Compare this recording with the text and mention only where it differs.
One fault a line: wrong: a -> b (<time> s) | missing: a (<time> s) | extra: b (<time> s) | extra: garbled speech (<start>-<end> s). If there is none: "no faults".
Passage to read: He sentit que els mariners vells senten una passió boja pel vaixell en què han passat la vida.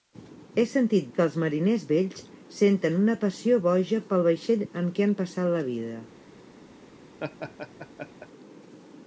no faults